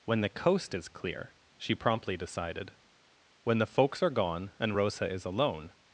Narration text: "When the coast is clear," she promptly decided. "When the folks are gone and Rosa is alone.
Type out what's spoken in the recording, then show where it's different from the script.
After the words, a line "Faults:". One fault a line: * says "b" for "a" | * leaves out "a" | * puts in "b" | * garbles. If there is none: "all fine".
"When the coast is clear," she promptly decided. "When the folks are gone and Rosa is alone.
Faults:
all fine